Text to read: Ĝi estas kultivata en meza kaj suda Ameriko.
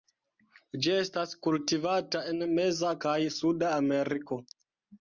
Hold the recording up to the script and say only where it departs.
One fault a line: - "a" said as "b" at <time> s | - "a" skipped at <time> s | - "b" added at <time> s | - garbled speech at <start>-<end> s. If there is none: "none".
none